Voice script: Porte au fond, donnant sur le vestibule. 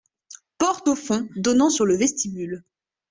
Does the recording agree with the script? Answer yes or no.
yes